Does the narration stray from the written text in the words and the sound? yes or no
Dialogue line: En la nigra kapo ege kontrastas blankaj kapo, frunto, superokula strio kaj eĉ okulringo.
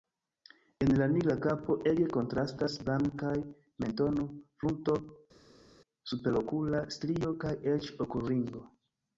yes